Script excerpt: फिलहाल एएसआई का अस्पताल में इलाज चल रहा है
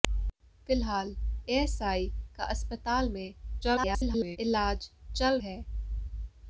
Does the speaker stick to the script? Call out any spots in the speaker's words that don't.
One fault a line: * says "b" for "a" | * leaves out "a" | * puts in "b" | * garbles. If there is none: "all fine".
* garbles
* leaves out "रहा"